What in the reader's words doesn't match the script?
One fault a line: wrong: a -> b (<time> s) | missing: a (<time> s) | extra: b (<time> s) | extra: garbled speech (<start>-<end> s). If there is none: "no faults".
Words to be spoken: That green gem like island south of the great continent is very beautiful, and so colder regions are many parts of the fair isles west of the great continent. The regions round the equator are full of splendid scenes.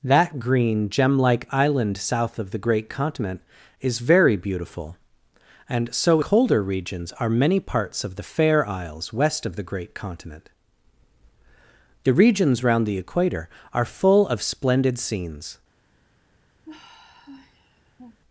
no faults